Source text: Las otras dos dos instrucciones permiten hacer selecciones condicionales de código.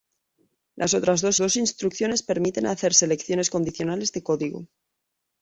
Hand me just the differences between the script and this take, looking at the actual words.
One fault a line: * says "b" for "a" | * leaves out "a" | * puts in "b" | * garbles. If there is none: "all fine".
all fine